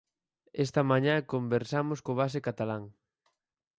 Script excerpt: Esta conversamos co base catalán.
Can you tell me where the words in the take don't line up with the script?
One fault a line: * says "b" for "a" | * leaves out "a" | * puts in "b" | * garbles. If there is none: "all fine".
* puts in "mañá"